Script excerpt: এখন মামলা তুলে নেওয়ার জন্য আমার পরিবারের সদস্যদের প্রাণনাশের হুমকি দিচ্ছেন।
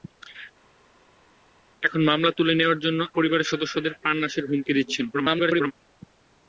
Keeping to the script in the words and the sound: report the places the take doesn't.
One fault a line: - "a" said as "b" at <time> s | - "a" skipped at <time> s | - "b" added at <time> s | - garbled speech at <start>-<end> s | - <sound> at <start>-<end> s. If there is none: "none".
- "আমার" skipped at 3.0 s
- garbled speech at 5.1-5.7 s